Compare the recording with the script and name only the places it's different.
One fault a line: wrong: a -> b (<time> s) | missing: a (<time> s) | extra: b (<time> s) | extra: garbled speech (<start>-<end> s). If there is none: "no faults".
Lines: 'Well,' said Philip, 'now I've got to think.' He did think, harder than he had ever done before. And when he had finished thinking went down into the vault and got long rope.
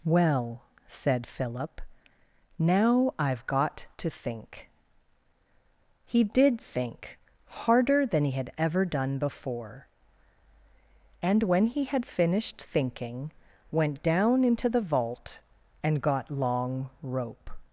no faults